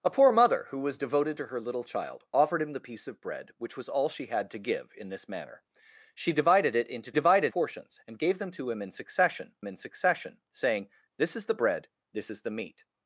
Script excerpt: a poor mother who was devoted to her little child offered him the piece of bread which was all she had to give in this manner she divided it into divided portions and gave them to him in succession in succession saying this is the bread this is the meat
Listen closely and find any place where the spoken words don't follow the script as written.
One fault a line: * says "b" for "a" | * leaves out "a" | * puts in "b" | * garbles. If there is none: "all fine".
all fine